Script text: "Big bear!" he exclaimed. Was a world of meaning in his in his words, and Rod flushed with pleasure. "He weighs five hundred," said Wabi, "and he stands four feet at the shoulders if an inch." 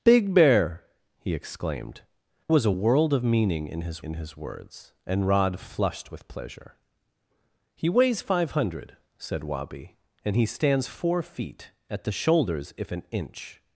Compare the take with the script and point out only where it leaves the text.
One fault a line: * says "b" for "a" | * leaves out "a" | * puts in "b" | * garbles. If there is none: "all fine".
all fine